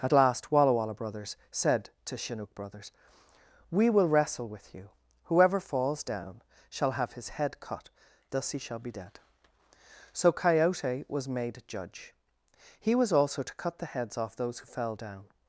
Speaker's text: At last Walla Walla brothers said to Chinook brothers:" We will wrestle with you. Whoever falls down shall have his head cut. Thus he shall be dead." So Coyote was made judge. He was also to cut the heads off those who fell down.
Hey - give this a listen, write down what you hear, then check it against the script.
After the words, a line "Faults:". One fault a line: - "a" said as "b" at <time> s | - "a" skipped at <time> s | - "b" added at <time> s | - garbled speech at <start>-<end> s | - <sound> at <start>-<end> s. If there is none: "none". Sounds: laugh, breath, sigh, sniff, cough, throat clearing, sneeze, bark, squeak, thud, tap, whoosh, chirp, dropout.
At last Walla Walla brothers said to Chinook brothers:" We will wrestle with you. Whoever falls down shall have his head cut. Thus he shall be dead." So Coyote was made judge. He was also to cut the heads off those who fell down.
Faults:
none